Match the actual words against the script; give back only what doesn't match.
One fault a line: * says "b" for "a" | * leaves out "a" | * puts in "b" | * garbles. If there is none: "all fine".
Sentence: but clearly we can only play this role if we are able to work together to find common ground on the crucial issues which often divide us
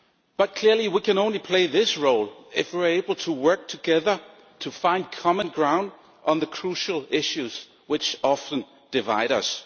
all fine